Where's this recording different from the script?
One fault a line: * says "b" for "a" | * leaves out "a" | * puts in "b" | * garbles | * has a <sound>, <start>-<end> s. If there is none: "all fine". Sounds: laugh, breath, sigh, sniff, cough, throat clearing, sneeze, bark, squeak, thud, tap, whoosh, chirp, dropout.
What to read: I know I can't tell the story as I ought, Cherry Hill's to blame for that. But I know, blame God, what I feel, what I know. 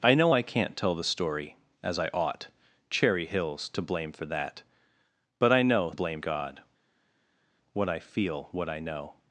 all fine